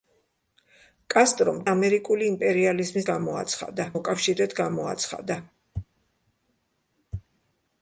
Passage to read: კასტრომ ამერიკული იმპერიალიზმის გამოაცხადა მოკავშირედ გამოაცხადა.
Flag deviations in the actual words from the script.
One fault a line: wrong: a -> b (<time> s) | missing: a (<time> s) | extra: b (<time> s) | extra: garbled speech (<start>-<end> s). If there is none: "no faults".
no faults